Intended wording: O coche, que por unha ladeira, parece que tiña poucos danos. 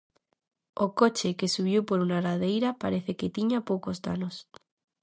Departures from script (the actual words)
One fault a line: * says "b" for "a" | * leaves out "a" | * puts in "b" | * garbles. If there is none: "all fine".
* puts in "subiu"